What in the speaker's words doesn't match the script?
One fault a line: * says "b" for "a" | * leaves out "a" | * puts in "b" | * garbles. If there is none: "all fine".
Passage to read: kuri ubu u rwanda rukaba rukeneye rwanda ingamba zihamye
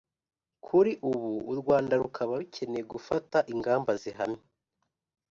* says "gufata" for "rwanda"